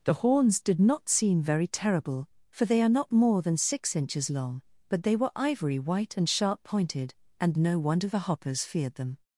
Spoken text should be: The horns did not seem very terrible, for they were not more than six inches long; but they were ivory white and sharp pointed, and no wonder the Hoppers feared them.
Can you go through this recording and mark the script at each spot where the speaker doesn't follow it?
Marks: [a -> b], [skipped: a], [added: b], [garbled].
The horns did not seem very terrible, for they [were -> are] not more than six inches long; but they were ivory white and sharp pointed, and no wonder the Hoppers feared them.